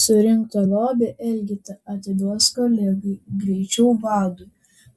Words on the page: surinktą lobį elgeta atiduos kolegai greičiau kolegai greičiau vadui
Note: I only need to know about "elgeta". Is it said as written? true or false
true